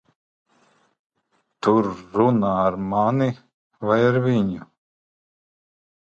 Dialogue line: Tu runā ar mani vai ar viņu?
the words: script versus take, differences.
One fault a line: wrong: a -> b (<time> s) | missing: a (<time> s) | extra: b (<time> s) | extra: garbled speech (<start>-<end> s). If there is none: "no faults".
no faults